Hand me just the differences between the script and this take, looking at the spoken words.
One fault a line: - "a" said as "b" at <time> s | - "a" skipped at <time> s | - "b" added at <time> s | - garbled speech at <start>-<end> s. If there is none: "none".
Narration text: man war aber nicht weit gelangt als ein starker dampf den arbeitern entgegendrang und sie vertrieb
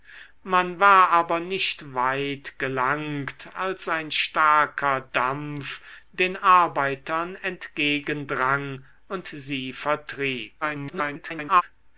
- garbled speech at 10.6-11.6 s